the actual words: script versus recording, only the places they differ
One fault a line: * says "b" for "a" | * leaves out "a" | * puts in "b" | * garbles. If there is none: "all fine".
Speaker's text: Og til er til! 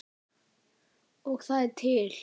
* says "það" for "til"